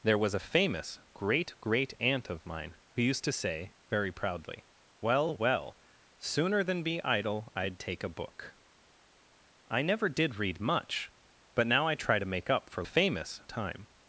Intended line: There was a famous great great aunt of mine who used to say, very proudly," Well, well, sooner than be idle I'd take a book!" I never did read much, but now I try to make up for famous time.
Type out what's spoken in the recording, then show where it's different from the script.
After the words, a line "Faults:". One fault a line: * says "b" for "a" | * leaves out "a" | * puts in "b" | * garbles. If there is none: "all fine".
There was a famous great great aunt of mine who used to say, very proudly," Well, well, sooner than be idle I'd take a book!" I never did read much, but now I try to make up for famous time.
Faults:
all fine